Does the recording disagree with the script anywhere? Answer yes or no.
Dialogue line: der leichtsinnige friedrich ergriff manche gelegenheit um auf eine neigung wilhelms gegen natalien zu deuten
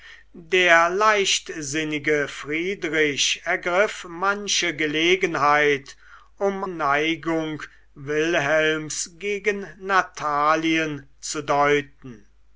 yes